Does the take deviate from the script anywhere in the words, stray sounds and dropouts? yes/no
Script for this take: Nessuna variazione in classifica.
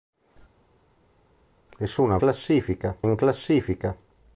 yes